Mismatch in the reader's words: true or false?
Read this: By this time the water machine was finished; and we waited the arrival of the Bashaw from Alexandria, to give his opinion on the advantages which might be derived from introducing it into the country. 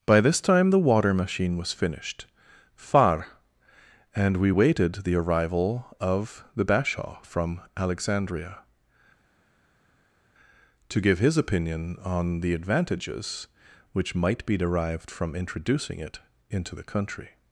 true